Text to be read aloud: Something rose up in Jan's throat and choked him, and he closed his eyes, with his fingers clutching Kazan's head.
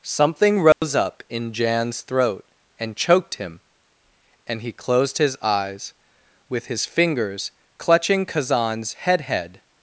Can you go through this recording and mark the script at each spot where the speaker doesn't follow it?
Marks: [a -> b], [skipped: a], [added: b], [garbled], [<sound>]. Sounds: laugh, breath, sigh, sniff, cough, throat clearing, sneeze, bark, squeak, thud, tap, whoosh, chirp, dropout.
Something rose [dropout] up in Jan's throat and choked him, and he closed his eyes, with his fingers clutching Kazan's head. [added: head]